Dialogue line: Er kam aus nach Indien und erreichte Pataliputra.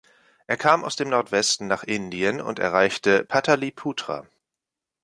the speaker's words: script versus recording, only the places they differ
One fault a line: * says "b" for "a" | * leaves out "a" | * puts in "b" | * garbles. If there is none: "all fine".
* puts in "dem Nordwesten"